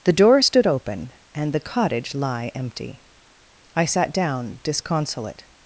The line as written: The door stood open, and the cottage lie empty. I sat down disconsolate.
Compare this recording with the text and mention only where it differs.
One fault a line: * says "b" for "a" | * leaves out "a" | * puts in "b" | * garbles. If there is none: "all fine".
all fine